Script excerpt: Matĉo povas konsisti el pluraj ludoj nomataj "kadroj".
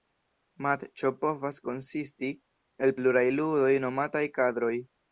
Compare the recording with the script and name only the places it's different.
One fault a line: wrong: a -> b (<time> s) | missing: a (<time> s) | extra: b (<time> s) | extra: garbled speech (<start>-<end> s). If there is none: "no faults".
no faults